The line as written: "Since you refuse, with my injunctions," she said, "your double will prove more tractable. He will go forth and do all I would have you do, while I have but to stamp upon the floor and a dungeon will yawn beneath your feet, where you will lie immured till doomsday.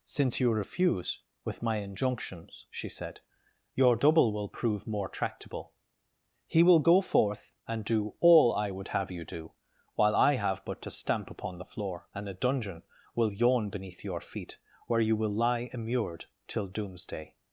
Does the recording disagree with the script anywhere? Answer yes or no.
no